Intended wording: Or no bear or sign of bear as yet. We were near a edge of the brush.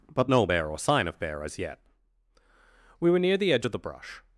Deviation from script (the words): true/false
true